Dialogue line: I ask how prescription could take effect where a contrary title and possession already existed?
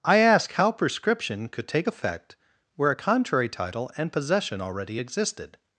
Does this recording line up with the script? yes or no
yes